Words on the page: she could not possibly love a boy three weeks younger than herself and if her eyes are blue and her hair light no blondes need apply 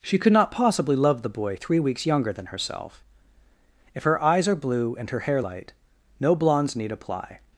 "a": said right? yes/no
no